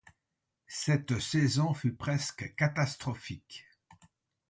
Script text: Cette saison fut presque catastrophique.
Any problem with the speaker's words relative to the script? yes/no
no